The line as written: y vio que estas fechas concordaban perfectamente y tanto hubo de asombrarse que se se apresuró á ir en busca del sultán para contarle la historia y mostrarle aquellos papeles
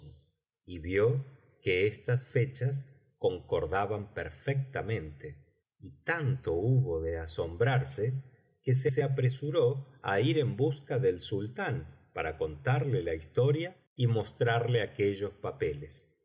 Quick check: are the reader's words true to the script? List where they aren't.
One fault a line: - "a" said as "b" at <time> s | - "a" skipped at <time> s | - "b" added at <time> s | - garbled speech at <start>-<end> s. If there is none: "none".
none